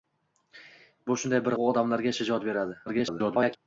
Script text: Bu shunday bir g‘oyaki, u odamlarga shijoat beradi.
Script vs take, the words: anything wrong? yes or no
yes